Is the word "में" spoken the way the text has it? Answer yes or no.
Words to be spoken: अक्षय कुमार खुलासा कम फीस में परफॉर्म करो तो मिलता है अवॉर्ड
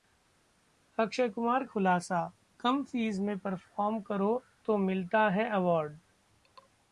yes